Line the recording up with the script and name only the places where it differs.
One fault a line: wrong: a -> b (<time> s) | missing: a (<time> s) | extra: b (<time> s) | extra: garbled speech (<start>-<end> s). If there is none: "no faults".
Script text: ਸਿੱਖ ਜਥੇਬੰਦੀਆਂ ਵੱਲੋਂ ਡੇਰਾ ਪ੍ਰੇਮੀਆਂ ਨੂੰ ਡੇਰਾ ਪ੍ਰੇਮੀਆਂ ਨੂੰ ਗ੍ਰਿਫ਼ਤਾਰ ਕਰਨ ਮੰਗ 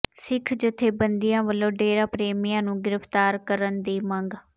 missing: ਡੇਰਾ ਪ੍ਰੇਮੀਆਂ ਨੂੰ (2.8 s)
extra: ਦੀ (3.8 s)